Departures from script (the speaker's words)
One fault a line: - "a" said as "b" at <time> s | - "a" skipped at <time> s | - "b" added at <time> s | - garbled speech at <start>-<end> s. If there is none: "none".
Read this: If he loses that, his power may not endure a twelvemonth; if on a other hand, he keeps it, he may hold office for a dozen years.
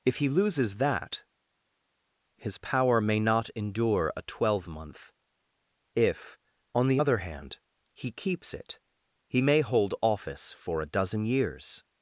- "a" said as "the" at 6.9 s